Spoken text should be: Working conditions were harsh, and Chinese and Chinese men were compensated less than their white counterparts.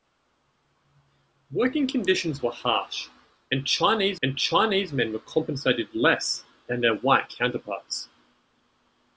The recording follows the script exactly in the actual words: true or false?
true